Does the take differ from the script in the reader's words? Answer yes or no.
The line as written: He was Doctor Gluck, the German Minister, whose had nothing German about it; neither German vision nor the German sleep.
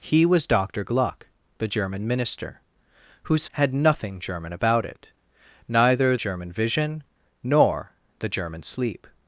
no